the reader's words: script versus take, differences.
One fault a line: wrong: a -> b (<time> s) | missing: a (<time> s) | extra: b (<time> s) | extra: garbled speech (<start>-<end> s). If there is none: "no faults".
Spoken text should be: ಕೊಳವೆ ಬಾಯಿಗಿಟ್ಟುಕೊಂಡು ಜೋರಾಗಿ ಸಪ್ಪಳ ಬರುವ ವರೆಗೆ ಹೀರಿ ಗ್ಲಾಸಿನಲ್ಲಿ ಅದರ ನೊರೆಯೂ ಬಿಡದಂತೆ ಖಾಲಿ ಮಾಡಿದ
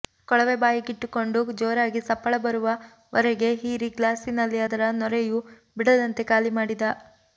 no faults